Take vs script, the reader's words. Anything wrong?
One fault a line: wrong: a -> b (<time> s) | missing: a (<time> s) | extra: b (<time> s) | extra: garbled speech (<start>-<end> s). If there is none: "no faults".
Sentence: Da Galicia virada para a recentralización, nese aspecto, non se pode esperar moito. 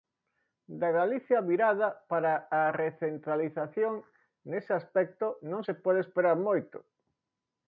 no faults